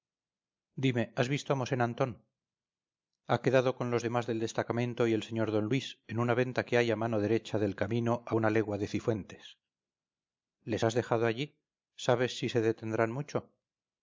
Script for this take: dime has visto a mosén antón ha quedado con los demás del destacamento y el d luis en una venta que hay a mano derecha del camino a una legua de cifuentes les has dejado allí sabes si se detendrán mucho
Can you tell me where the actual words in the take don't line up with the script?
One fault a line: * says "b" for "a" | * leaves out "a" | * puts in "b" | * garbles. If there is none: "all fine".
* puts in "sr"